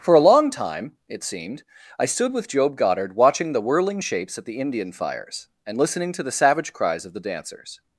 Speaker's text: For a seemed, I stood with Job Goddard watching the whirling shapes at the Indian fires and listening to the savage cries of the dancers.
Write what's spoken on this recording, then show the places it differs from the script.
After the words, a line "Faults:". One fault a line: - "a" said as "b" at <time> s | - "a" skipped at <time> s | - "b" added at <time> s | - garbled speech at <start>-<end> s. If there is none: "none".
For a long time, it seemed, I stood with Job Goddard watching the whirling shapes at the Indian fires and listening to the savage cries of the dancers.
Faults:
- "long time it" added at 0.2 s